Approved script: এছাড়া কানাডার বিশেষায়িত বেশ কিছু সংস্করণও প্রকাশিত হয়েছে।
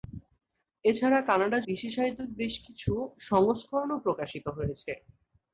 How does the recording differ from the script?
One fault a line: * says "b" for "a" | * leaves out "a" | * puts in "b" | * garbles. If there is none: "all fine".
all fine